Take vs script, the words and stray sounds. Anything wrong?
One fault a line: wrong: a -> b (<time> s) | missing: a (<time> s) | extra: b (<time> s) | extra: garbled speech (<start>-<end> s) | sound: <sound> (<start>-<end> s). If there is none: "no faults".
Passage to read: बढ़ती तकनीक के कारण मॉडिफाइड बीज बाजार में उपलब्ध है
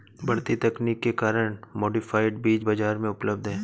no faults